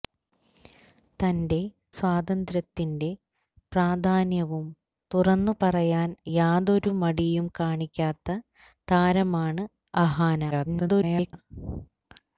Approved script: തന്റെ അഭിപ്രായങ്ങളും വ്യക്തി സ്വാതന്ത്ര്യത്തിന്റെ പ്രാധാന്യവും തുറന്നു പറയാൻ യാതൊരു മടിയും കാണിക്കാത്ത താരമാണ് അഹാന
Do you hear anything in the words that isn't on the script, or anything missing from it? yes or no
yes